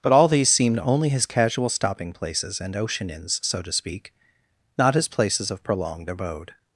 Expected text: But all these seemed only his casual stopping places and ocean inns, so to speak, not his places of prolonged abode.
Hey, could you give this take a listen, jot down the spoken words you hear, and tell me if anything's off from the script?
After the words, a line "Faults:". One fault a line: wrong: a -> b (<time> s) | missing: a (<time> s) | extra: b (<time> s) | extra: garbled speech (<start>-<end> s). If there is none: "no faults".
But all these seemed only his casual stopping places and ocean inns, so to speak, not his places of prolonged abode.
Faults:
no faults